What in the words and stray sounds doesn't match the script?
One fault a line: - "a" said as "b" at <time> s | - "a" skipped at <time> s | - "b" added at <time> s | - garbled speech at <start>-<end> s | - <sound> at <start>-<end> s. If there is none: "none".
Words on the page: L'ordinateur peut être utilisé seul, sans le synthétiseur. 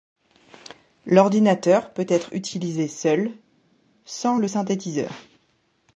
none